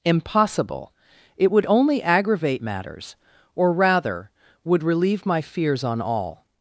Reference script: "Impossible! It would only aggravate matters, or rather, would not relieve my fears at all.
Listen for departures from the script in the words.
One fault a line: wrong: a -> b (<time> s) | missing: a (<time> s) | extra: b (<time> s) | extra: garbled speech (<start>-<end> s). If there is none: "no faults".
missing: not (4.8 s)
wrong: at -> on (5.8 s)